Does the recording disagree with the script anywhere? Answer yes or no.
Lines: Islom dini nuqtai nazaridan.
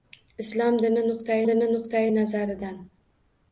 yes